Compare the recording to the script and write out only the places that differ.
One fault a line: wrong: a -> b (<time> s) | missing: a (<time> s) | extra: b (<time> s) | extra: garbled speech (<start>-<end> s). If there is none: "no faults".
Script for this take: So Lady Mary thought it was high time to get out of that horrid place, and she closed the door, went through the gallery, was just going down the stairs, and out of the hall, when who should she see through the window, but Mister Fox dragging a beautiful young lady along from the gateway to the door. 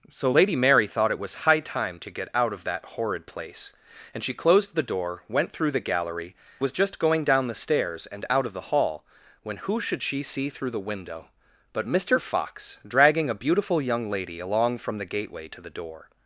no faults